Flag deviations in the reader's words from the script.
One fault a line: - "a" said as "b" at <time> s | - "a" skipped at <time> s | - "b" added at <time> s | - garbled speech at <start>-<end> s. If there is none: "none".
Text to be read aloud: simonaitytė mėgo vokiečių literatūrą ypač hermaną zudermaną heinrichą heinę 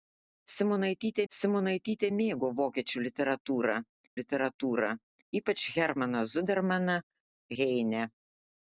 - "simonaitytė" added at 1.3 s
- "literatūrą" added at 4.2 s
- "heinrichą" skipped at 7.0 s